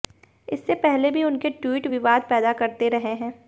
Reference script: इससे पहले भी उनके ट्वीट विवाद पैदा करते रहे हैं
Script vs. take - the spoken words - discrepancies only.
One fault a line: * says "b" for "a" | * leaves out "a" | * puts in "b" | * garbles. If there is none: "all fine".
all fine